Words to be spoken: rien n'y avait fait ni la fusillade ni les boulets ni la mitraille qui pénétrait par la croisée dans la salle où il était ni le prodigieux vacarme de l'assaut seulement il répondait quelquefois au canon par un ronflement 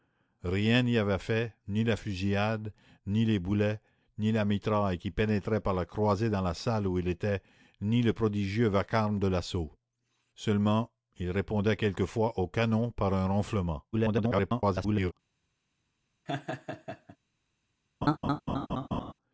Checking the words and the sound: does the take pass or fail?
fail